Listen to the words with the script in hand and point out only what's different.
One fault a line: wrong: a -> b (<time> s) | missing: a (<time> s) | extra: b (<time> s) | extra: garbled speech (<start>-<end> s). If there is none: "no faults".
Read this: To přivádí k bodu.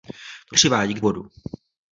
no faults